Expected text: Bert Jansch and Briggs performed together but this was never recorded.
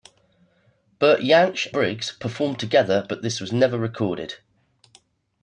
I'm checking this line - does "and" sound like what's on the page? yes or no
no